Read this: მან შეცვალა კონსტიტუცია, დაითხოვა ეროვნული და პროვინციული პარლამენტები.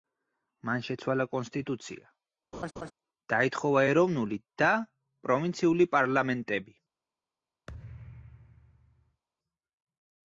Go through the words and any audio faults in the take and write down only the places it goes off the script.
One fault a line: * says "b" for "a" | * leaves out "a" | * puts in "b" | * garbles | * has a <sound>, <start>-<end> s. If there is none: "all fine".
* has a laugh, 2.5-2.9 s
* has a thud, 7.7-9.2 s